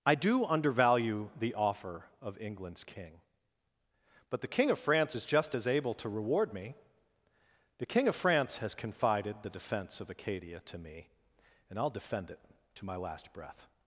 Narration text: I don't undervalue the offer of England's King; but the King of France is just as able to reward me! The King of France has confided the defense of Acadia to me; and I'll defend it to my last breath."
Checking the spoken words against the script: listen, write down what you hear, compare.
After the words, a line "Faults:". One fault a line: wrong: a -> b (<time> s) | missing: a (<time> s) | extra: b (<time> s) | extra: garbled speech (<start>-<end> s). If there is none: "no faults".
I do undervalue the offer of England's King; but the King of France is just as able to reward me! The King of France has confided the defense of Acadia to me; and I'll defend it to my last breath."
Faults:
wrong: don't -> do (0.1 s)